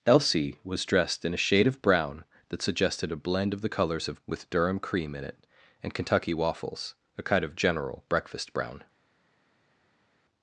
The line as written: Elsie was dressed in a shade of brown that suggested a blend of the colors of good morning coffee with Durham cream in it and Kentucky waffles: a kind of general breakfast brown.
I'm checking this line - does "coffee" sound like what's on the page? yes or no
no